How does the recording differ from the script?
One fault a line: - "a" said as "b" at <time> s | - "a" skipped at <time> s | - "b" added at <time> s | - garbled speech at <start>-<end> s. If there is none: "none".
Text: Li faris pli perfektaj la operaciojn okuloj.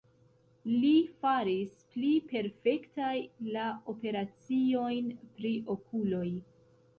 - "pri" added at 5.4 s